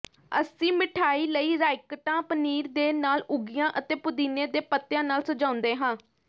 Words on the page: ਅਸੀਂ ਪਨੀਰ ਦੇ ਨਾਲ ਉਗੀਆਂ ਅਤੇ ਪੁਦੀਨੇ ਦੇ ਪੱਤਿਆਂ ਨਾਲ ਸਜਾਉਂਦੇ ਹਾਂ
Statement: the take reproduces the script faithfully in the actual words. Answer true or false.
false